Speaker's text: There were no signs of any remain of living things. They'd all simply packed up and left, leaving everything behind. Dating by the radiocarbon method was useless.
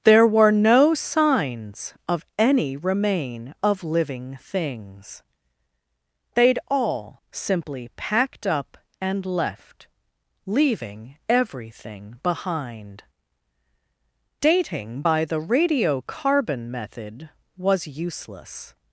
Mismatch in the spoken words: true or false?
false